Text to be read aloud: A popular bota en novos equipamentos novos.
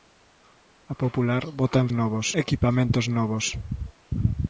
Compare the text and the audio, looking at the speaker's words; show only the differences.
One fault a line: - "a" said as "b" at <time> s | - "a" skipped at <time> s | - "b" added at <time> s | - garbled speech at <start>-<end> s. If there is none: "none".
none